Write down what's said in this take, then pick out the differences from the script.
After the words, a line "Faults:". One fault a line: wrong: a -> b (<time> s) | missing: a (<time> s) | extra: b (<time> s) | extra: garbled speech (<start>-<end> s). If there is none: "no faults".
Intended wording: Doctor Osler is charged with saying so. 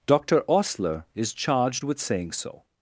Doctor Osler is charged with saying so.
Faults:
no faults